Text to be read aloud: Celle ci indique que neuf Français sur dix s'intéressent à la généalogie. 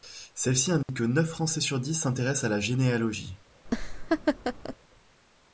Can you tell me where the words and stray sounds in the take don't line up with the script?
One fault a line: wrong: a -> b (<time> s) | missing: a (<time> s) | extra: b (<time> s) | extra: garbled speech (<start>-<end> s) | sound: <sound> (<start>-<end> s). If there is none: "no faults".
sound: dropout (0.8-0.9 s)
sound: laugh (3.7-4.8 s)